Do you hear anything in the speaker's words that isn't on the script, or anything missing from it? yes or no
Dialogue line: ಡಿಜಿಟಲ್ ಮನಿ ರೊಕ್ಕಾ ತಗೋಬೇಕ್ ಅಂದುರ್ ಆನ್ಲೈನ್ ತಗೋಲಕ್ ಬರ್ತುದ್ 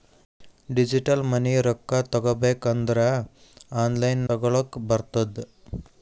no